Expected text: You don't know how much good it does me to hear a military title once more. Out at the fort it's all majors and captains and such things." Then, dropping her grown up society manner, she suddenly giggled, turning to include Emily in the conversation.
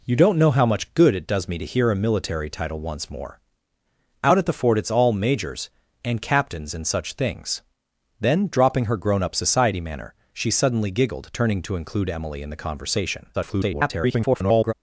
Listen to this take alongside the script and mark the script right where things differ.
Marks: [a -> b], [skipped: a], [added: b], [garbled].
You don't know how much good it does me to hear a military title once more. Out at the fort it's all majors and captains and such things." Then, dropping her grown up society manner, she suddenly giggled, turning to include Emily in the conversation. [garbled]